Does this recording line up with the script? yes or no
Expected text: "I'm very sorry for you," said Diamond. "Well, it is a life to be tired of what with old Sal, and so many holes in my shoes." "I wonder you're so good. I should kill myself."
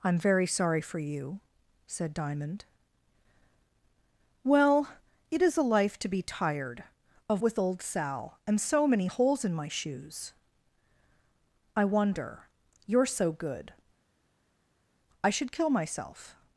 no